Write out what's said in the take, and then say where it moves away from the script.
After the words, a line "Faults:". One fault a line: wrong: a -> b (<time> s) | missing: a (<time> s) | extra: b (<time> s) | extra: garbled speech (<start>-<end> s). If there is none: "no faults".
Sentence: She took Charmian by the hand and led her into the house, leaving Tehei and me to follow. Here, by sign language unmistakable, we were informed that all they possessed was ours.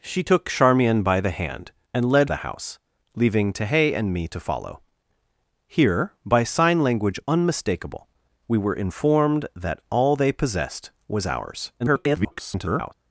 She took Charmian by the hand and led the house, leaving Tehei and me to follow. Here, by sign language unmistakable, we were informed that all they possessed was ours. [garbled]
Faults:
missing: her into (2.3 s)
extra: garbled speech (11.8-12.9 s)